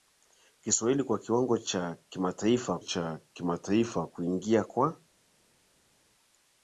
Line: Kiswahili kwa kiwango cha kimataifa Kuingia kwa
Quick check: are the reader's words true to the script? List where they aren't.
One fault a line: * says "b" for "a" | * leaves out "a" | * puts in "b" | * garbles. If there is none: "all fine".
* puts in "cha kimataifa"